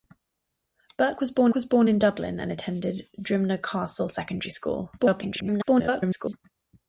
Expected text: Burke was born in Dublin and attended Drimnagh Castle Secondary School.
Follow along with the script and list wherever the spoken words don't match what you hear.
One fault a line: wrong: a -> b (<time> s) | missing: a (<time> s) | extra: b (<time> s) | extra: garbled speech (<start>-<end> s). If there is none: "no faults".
extra: was born (1.5 s)
extra: garbled speech (5.0-6.3 s)